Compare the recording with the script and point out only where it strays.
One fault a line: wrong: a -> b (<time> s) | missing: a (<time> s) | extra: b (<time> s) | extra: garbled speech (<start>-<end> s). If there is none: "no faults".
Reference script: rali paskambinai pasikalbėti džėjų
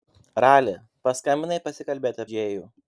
no faults